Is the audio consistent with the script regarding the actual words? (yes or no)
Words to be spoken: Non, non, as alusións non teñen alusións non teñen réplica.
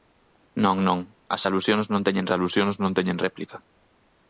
yes